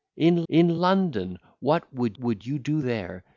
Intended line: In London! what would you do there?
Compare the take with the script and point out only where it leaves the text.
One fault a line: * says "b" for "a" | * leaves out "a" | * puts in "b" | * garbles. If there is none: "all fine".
* puts in "in"
* puts in "would"